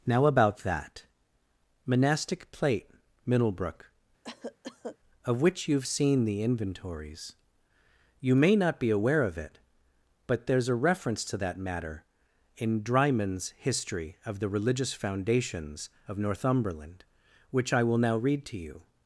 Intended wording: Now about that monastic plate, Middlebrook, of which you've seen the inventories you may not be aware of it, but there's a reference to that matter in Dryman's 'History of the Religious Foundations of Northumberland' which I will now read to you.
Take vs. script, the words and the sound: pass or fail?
fail